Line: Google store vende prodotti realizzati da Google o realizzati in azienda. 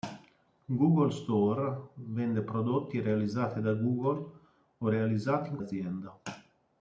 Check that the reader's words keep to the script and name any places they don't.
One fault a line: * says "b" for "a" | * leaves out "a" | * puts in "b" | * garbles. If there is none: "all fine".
all fine